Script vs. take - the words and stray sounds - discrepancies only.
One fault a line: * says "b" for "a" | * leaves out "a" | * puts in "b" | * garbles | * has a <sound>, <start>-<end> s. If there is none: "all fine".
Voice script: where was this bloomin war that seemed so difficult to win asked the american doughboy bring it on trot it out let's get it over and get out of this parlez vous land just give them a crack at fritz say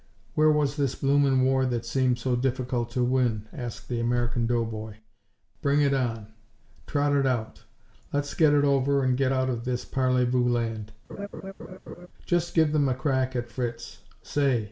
* has a laugh, 11.1-12.1 s